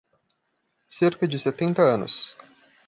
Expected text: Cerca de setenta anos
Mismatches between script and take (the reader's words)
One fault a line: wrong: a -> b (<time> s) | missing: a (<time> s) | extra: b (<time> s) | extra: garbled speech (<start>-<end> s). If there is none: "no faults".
no faults